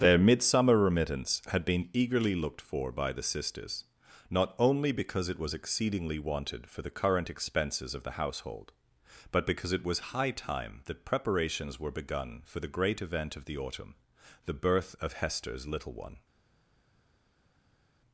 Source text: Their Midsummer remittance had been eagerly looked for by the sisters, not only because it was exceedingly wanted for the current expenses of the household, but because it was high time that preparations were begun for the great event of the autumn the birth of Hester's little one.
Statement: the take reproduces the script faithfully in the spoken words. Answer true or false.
true